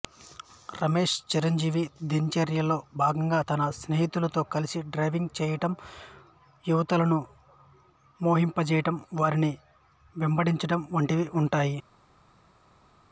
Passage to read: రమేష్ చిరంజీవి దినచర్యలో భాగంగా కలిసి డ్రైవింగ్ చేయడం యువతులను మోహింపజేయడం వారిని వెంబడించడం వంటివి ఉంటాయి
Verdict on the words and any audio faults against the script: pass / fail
fail